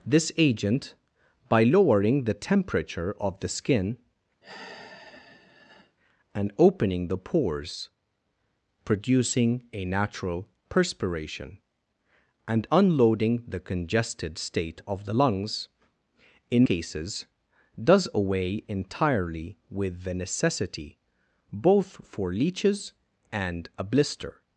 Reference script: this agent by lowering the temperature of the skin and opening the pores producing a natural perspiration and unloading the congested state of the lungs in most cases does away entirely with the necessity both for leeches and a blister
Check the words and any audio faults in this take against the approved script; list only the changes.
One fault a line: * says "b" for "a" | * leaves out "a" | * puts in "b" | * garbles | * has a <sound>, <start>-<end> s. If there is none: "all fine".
* has a sigh, 4.4-6.0 s
* leaves out "most"